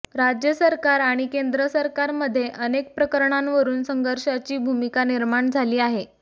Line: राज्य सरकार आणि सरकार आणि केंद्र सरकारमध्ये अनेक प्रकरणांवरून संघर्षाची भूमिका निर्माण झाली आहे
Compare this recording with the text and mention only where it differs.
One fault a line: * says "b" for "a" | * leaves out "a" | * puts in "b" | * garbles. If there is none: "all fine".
* leaves out "सरकार आणि"